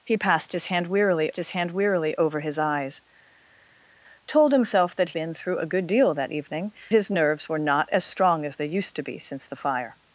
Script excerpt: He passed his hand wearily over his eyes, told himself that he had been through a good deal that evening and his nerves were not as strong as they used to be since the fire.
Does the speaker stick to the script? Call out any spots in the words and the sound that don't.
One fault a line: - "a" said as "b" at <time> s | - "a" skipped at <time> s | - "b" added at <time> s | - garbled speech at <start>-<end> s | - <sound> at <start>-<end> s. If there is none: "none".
- "his hand wearily" added at 1.4 s
- "he had" skipped at 5.1 s
- "and" skipped at 6.7 s